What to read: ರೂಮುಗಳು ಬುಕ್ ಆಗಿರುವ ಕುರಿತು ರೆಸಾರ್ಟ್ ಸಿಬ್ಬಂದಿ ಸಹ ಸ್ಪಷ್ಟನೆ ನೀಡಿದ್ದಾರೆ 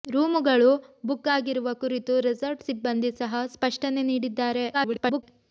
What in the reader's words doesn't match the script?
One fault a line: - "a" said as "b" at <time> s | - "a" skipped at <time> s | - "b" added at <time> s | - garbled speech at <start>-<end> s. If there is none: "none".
- garbled speech at 4.7-5.2 s